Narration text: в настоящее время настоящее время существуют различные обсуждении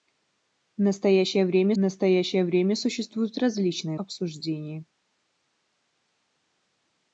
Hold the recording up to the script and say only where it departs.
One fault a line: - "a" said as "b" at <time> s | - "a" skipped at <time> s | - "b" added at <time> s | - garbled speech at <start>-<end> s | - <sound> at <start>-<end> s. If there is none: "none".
none